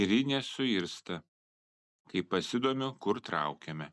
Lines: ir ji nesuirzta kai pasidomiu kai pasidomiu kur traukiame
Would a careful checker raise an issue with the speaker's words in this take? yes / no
yes